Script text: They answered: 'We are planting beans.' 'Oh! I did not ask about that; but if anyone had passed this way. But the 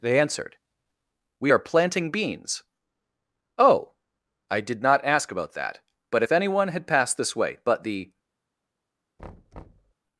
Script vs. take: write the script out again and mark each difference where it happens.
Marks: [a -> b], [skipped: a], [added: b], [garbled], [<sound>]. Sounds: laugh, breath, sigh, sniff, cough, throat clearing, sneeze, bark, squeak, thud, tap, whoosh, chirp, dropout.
They answered: 'We are planting beans.' 'Oh! I did not ask about that; but if anyone had passed this way. But the [thud]